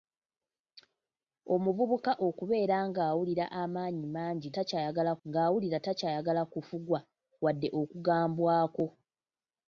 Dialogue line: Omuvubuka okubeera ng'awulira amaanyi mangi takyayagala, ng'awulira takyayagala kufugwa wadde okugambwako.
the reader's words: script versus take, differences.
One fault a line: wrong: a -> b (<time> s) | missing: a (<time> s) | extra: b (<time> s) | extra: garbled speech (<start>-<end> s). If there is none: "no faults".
no faults